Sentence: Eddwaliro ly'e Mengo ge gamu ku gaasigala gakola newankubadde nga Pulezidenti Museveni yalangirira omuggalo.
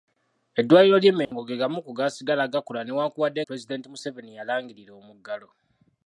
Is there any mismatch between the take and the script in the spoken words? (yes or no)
yes